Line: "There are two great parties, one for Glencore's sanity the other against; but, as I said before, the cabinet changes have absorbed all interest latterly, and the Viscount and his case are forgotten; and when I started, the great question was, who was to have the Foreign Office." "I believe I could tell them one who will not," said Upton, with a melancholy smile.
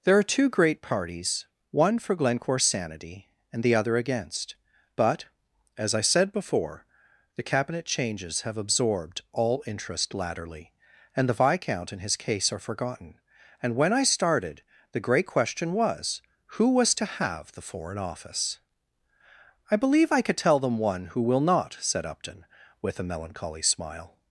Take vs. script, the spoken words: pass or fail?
fail